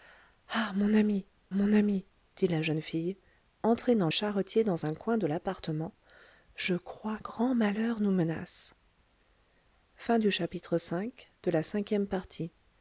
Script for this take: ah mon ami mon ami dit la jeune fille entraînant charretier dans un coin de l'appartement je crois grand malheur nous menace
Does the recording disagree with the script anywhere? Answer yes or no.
no